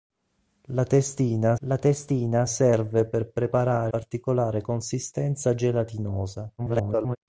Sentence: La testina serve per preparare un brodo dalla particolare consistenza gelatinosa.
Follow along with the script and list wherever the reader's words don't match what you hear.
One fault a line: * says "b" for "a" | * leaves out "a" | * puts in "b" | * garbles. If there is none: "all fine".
* puts in "la testina"
* leaves out "un brodo dalla"
* garbles